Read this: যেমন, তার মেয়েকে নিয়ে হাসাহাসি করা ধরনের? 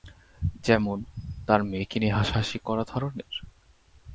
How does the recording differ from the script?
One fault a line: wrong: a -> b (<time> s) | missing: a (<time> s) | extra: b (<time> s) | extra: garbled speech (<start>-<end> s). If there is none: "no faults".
no faults